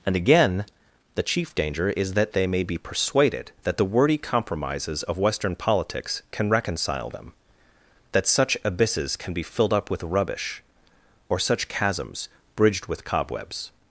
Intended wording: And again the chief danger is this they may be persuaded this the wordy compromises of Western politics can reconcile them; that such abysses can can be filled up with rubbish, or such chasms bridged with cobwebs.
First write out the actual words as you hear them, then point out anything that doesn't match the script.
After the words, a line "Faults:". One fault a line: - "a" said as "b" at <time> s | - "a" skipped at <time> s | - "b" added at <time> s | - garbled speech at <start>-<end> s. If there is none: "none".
And again the chief danger is that they may be persuaded that the wordy compromises of Western politics can reconcile them; that such abysses can be filled up with rubbish, or such chasms bridged with cobwebs.
Faults:
- "this" said as "that" at 2.1 s
- "this" said as "that" at 3.6 s
- "can" skipped at 9.3 s